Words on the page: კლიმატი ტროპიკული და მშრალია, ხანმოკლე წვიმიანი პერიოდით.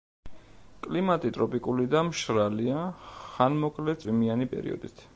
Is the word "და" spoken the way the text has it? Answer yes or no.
yes